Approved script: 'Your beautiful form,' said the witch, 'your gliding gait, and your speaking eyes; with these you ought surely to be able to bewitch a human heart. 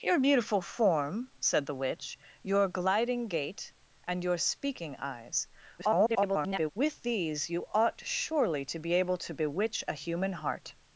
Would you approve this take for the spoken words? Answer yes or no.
no